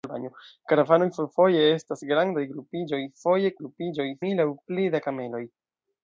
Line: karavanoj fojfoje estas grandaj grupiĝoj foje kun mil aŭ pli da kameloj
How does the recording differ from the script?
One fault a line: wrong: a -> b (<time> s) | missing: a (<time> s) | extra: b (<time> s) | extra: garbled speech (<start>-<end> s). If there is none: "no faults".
wrong: kun -> grupiĝoj (3.6 s)